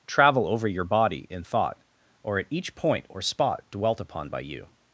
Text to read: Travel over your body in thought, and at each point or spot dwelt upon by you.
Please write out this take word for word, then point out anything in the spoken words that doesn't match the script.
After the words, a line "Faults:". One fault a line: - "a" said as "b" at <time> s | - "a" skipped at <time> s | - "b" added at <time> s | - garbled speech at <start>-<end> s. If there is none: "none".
Travel over your body in thought, or at each point or spot dwelt upon by you.
Faults:
- "and" said as "or" at 2.2 s